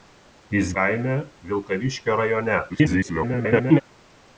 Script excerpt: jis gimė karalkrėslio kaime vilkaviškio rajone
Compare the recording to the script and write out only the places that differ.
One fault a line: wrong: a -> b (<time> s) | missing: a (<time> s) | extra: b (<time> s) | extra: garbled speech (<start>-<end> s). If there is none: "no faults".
missing: gimė karalkrėslio (0.7 s)
extra: garbled speech (2.7-3.8 s)